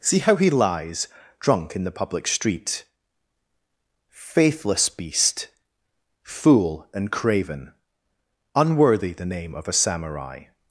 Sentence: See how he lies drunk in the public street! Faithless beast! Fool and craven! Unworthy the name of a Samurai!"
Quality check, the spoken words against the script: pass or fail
pass